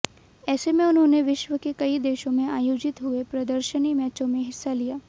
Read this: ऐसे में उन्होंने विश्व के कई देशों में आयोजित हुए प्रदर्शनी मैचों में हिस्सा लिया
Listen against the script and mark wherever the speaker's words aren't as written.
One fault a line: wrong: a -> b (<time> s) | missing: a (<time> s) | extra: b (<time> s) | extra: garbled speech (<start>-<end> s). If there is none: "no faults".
no faults